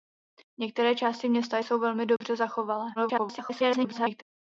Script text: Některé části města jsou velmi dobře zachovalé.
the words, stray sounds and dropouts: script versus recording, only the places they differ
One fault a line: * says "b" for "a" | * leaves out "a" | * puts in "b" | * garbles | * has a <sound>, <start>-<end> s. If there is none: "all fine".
* has a dropout, 2.2-2.2 s
* garbles